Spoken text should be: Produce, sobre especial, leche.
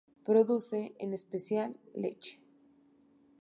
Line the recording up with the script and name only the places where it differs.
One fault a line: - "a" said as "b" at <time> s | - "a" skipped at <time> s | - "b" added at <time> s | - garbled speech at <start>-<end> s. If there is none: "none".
- "sobre" said as "en" at 1.0 s